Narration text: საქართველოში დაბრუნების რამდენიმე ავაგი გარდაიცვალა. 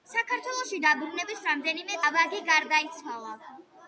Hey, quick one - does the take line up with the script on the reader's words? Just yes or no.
yes